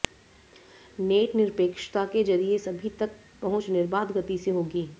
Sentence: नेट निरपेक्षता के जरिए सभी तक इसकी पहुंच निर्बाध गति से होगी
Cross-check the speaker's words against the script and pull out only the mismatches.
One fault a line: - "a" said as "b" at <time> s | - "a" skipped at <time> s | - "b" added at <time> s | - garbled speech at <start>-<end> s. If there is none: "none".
- "इसकी" skipped at 3.1 s